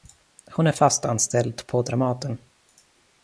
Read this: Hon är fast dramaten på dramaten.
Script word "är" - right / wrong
right